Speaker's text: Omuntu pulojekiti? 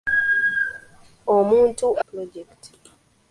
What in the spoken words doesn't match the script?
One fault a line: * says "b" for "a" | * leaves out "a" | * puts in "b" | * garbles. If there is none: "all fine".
all fine